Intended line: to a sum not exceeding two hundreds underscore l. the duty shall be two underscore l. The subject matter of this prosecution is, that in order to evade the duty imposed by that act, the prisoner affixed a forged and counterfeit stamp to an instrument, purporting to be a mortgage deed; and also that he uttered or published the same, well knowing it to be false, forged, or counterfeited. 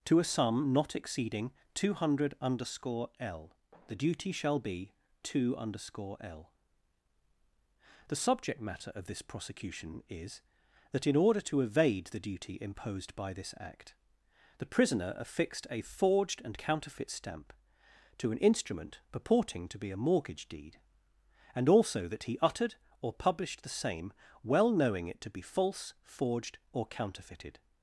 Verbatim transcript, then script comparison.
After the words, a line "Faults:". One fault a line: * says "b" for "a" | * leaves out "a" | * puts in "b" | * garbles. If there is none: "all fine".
to a sum not exceeding two hundred underscore l. the duty shall be two underscore l. The subject matter of this prosecution is, that in order to evade the duty imposed by this act, the prisoner affixed a forged and counterfeit stamp to an instrument, purporting to be a mortgage deed; and also that he uttered or published the same, well knowing it to be false, forged, or counterfeited.
Faults:
* says "hundred" for "hundreds"
* says "this" for "that"